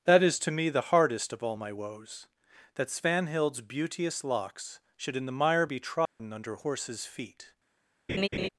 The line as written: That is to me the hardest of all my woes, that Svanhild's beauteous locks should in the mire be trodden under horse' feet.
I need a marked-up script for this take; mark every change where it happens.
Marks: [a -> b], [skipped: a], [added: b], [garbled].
That is to me the hardest of all my woes, that Svanhild's beauteous locks should in the mire be trodden under [horse' -> horses] feet.